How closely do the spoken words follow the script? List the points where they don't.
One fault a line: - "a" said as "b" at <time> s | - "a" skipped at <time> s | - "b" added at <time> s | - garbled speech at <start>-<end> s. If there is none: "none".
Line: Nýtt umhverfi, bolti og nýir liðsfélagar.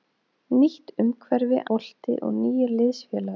none